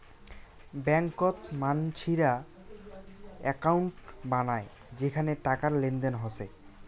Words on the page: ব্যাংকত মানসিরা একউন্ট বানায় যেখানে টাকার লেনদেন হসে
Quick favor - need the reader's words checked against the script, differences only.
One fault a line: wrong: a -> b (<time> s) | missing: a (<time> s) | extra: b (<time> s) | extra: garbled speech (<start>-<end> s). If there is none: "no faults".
no faults